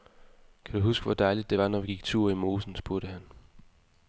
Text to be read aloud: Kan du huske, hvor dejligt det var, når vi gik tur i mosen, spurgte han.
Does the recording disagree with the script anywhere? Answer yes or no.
no